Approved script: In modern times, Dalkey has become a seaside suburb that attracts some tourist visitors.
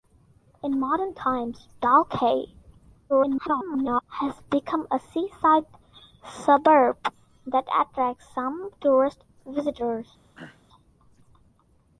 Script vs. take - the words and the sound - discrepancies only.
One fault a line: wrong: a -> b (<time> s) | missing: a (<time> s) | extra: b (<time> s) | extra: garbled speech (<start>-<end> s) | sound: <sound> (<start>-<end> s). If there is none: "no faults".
extra: garbled speech (3.1-4.0 s)
sound: throat clearing (10.3-10.6 s)